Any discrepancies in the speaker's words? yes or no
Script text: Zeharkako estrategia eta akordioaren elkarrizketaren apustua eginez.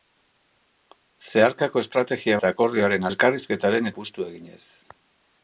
no